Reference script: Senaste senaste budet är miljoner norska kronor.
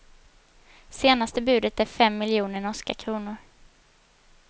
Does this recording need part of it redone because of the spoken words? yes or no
yes